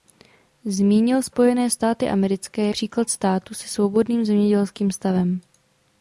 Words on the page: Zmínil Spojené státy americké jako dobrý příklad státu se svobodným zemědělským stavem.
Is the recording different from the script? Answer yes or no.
yes